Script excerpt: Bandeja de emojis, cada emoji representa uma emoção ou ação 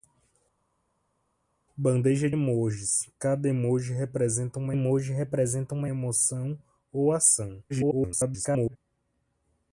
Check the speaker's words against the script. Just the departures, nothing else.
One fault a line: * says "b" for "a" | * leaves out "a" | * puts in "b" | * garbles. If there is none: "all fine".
* leaves out "de"
* puts in "emoji representa uma"
* garbles